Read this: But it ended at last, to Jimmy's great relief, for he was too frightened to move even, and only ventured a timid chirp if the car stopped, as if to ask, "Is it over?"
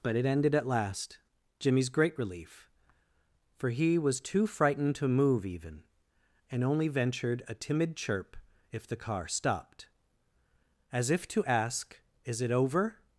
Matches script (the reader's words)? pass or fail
fail